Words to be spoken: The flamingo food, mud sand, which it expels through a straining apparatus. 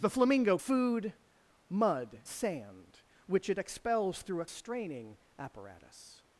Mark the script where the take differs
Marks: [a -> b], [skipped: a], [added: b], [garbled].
The flamingo food, mud sand, which it expels through a straining apparatus.